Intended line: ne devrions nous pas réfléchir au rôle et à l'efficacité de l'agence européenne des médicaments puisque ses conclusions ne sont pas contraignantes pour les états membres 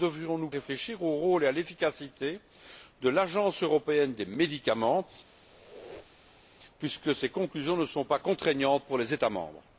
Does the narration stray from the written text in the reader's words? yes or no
yes